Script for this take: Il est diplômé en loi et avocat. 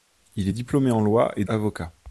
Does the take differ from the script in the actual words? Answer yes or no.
no